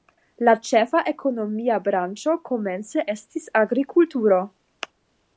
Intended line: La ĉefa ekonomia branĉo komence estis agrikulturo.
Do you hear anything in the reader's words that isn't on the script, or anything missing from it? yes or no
no